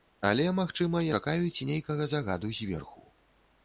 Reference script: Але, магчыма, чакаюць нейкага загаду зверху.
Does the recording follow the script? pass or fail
pass